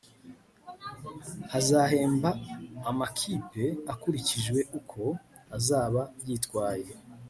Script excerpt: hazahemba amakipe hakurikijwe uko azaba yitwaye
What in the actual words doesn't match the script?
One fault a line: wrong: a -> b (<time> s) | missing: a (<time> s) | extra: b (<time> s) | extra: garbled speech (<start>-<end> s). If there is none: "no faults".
no faults